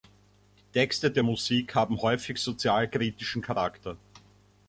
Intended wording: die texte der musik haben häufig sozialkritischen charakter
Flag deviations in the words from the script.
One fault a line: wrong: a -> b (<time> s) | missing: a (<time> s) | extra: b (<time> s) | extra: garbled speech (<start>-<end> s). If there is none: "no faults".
no faults